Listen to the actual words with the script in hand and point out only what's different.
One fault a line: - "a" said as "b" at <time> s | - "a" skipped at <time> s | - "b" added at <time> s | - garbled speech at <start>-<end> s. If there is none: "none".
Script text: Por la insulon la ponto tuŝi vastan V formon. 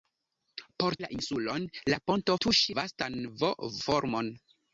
none